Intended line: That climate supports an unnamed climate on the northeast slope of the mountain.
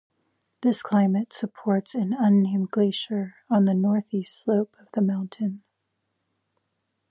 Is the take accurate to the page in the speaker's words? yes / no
no